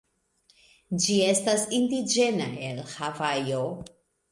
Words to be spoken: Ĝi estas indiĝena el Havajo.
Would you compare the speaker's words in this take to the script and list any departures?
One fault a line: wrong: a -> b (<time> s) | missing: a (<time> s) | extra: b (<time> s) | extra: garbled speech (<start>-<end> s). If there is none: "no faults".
no faults